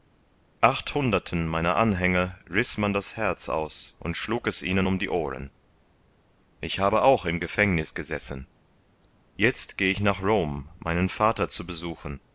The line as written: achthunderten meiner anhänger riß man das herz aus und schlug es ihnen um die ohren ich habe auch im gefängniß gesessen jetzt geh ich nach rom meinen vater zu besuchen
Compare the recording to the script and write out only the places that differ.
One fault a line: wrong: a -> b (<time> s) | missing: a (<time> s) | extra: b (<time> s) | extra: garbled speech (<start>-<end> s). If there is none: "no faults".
no faults